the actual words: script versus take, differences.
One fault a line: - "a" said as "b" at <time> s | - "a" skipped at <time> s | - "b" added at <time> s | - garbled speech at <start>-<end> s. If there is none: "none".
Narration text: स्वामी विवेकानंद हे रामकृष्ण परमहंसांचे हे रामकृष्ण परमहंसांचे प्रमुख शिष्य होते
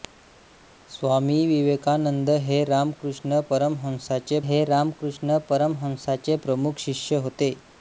none